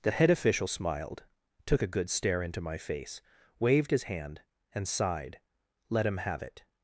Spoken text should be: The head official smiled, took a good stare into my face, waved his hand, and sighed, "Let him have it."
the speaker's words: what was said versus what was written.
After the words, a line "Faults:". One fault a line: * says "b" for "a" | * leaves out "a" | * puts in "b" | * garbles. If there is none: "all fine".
The head official smiled, took a good stare into my face, waved his hand, and sighed, "Let him have it."
Faults:
all fine